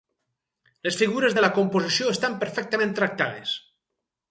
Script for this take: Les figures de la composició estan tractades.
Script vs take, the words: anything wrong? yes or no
yes